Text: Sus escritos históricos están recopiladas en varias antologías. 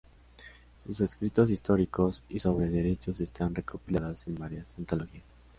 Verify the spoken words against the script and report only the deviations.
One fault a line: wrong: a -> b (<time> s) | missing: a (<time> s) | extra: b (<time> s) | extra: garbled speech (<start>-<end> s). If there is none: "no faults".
extra: y sobre derechos (2.3 s)